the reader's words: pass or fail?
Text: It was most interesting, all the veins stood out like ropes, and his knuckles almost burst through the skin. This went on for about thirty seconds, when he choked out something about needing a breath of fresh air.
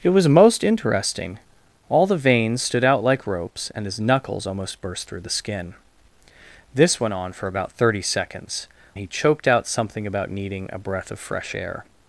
fail